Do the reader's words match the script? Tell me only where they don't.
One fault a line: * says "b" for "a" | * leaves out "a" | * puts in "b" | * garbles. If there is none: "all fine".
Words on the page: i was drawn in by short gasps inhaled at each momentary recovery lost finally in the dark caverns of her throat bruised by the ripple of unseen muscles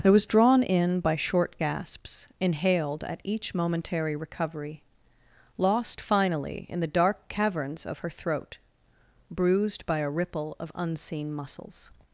* says "a" for "the"